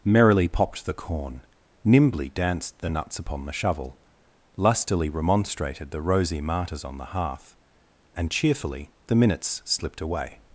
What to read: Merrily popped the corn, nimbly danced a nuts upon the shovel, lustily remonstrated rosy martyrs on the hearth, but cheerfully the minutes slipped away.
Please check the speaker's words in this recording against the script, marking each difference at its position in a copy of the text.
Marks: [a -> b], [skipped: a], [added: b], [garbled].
Merrily popped the corn, nimbly danced [a -> the] nuts upon the shovel, lustily remonstrated [added: the] rosy martyrs on the hearth, [but -> and] cheerfully the minutes slipped away.